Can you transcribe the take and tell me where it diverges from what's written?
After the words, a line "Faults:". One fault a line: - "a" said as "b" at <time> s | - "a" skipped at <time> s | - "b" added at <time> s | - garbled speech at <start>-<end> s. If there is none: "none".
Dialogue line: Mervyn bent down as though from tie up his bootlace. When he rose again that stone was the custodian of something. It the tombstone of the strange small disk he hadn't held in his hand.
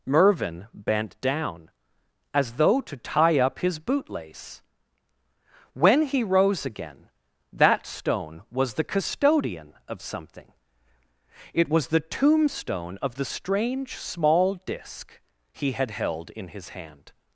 Mervyn bent down as though to tie up his bootlace. When he rose again that stone was the custodian of something. It was the tombstone of the strange small disk he had held in his hand.
Faults:
- "from" said as "to" at 2.8 s
- "was" added at 11.7 s
- "hadn't" said as "had" at 15.7 s